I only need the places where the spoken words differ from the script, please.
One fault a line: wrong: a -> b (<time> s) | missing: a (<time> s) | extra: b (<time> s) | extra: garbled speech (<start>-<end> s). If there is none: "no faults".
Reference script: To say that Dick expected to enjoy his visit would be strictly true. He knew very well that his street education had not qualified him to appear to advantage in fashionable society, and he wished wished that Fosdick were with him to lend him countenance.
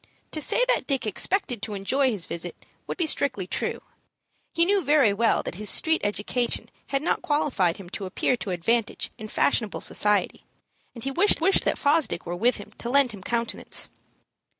no faults